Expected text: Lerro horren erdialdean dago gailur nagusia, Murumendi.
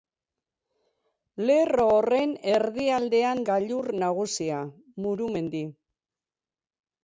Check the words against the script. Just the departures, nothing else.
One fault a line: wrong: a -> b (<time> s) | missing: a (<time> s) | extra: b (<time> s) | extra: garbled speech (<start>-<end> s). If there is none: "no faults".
missing: dago (3.4 s)